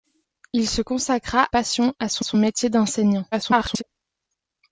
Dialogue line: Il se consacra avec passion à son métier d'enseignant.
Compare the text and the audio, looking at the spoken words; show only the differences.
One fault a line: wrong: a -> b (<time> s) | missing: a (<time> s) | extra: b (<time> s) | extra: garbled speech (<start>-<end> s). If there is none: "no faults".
missing: avec (1.5 s)
extra: son (2.2 s)
extra: garbled speech (3.3-3.8 s)